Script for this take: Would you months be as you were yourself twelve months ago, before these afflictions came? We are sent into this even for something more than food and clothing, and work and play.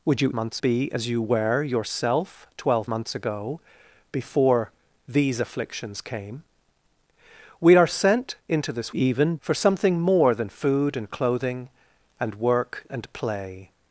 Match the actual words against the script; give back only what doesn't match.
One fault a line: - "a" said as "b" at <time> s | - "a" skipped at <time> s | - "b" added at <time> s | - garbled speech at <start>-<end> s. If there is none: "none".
none